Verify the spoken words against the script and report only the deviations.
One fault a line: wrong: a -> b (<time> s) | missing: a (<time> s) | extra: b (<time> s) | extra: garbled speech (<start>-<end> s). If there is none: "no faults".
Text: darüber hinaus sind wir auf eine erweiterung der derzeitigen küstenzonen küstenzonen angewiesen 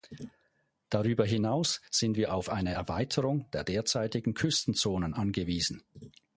missing: küstenzonen (5.1 s)